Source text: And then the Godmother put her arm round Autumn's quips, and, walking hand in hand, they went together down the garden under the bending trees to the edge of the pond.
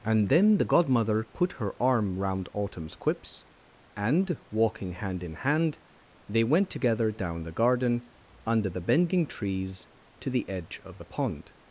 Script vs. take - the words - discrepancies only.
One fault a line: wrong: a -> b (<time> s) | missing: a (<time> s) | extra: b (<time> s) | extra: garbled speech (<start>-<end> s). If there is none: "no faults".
no faults